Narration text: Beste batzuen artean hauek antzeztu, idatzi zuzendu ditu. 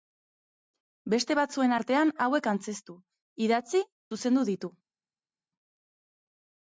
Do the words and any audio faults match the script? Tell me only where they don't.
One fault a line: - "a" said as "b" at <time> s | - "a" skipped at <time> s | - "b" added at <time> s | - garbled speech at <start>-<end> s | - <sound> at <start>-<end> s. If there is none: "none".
none